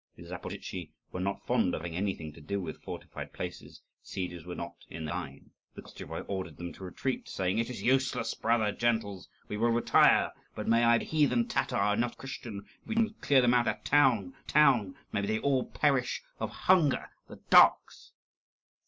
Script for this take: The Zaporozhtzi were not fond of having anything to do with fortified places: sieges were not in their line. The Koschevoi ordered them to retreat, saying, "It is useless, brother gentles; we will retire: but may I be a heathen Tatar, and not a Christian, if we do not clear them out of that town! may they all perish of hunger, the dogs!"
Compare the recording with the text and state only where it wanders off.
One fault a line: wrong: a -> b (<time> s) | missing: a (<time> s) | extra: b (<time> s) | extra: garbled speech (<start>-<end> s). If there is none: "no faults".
missing: be (11.0 s)
extra: town (14.5 s)